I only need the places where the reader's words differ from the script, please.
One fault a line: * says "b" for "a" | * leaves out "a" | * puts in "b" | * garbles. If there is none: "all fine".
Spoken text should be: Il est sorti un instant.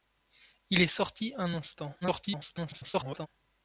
* garbles